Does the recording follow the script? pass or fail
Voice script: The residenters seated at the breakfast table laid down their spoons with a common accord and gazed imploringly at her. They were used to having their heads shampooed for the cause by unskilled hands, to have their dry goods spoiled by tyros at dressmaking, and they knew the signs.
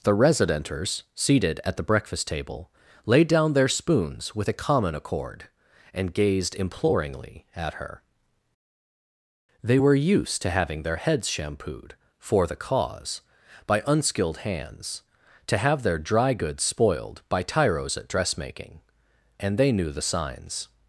pass